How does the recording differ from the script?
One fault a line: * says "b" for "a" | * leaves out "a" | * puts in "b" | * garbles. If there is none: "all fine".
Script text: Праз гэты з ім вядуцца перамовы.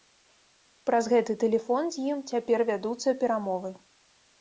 * puts in "тэлефон"
* puts in "цяпер"